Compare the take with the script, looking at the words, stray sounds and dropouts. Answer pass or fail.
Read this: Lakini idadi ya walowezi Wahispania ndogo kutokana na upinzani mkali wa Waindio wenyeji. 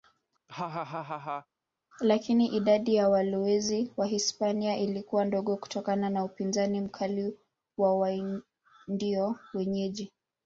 fail